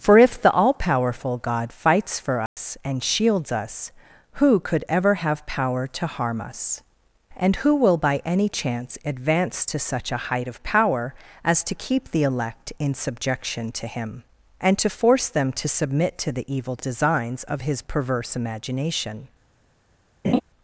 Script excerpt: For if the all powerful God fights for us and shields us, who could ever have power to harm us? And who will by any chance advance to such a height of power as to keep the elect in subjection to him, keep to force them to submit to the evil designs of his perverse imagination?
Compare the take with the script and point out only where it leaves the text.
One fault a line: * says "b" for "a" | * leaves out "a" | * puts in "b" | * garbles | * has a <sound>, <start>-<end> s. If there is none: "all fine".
* has a dropout, 2.5-2.6 s
* says "and" for "keep"
* has a laugh, 20.2-20.4 s